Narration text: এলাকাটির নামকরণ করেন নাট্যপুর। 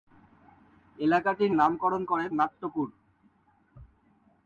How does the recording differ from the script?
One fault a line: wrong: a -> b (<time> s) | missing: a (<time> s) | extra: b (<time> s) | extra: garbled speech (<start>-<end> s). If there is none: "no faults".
no faults